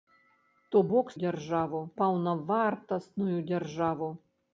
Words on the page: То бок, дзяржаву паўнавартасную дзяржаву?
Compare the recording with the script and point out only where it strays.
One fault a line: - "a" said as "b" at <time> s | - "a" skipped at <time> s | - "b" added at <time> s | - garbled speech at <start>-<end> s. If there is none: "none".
none